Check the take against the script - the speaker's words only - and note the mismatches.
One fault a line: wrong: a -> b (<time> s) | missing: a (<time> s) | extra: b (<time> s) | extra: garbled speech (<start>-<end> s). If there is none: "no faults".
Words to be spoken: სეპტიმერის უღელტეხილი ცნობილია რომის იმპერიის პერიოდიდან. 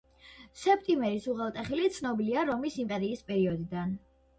no faults